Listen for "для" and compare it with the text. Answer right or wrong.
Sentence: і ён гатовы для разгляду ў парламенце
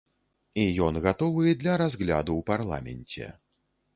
right